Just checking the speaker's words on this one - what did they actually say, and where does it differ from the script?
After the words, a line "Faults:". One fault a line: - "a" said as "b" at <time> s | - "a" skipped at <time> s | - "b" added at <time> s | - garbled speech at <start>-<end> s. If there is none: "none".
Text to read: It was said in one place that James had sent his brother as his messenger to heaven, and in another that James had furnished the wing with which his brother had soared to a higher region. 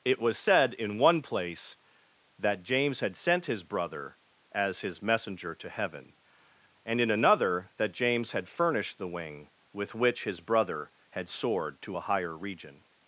It was said in one place that James had sent his brother as his messenger to heaven, and in another that James had furnished the wing with which his brother had soared to a higher region.
Faults:
none